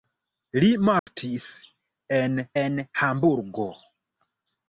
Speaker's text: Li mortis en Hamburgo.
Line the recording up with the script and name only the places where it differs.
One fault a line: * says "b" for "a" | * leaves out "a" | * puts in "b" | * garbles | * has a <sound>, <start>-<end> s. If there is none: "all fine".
* has a dropout, 1.0-1.1 s
* puts in "en"